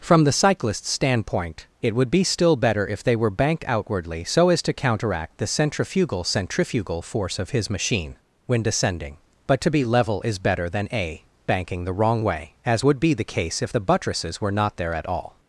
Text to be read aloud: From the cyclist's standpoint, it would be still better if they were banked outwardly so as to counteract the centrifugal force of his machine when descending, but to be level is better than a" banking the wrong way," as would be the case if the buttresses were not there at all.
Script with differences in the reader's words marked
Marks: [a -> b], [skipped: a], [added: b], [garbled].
From the cyclist's standpoint, it would be still better if they were banked outwardly so as to counteract the centrifugal [added: centrifugal] force of his machine when descending, but to be level is better than a" banking the wrong way," as would be the case if the buttresses were not there at all.